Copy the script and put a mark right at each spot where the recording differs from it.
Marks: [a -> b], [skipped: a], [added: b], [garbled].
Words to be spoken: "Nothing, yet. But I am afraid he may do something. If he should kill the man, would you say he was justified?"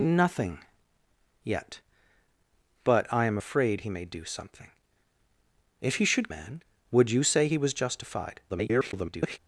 "Nothing, yet. But I am afraid he may do something. If he should [skipped: kill the] man, would you say he was justified?" [garbled]